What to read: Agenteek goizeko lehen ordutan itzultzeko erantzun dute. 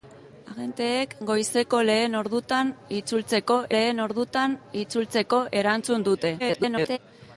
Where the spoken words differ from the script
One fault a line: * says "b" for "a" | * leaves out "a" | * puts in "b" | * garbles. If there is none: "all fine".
* puts in "lehen ordutan itzultzeko"
* garbles